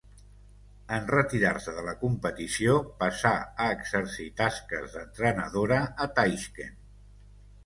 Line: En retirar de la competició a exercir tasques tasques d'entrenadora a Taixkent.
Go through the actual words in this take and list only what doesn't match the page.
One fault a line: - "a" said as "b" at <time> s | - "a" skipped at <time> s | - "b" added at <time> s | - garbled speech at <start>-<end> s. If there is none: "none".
- "se" added at 1.6 s
- "passà" added at 3.0 s
- "tasques" skipped at 5.0 s